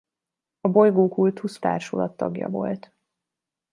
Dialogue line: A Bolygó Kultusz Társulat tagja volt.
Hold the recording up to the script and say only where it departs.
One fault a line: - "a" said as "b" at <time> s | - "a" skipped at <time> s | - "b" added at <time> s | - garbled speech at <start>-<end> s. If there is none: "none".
none